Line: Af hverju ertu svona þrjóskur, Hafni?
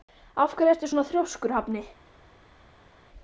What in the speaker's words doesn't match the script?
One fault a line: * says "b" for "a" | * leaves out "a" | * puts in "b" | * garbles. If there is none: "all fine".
all fine